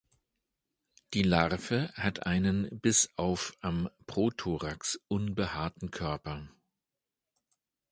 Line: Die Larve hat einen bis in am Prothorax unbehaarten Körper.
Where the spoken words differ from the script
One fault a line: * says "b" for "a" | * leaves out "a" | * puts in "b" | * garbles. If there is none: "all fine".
* says "auf" for "in"